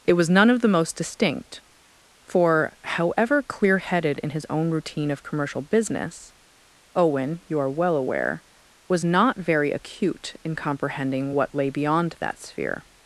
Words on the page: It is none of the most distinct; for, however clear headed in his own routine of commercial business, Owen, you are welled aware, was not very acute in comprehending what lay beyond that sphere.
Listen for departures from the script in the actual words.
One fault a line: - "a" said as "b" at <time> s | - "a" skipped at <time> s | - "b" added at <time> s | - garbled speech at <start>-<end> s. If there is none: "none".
- "is" said as "was" at 0.1 s
- "welled" said as "well" at 7.7 s